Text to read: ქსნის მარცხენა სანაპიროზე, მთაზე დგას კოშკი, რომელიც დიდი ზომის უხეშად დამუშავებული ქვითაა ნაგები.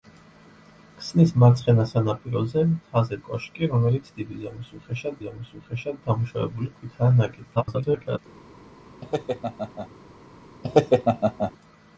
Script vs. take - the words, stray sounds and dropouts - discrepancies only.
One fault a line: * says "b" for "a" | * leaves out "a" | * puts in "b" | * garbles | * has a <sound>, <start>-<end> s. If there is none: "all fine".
* leaves out "დგას"
* puts in "ზომის უხეშად"
* garbles
* has a laugh, 9.0-9.9 s
* has a laugh, 10.6-11.5 s